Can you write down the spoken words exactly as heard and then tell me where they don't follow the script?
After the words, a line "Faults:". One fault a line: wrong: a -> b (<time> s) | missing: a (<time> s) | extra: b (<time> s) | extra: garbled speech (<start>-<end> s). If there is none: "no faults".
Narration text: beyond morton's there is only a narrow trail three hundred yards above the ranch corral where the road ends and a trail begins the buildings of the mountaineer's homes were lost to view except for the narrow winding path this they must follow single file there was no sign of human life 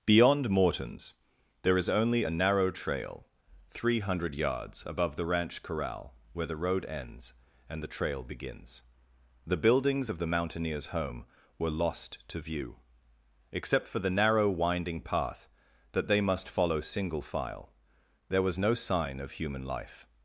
beyond morton's there is only a narrow trail three hundred yards above the ranch corral where the road ends and the trail begins the buildings of the mountaineer's home were lost to view except for the narrow winding path that they must follow single file there was no sign of human life
Faults:
wrong: a -> the (7.8 s)
wrong: homes -> home (10.9 s)
wrong: this -> that (15.9 s)